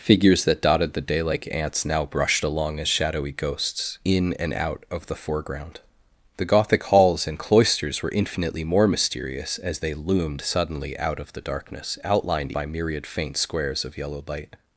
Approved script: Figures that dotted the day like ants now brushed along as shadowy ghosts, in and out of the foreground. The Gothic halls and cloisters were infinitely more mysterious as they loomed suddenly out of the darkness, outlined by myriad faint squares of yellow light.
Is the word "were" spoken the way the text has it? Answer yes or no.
yes